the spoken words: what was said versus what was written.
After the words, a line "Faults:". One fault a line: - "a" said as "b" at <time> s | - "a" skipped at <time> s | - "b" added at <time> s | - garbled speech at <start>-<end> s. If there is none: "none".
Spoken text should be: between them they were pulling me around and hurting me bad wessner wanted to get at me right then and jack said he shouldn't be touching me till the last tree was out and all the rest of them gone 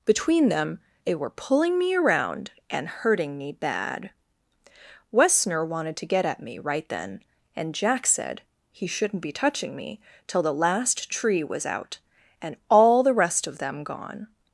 between them they were pulling me around and hurting me bad wessner wanted to get at me right then and jack said he shouldn't be touching me till the last tree was out and all the rest of them gone
Faults:
none